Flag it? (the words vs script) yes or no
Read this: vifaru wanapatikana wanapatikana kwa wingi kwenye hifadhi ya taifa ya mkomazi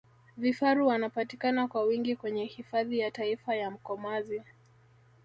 yes